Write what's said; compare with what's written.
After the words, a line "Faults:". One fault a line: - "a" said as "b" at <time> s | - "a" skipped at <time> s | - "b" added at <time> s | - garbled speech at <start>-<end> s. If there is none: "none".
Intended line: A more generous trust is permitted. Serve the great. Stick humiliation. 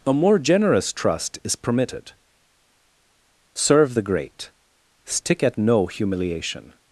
A more generous trust is permitted. Serve the great. Stick at no humiliation.
Faults:
- "at no" added at 5.4 s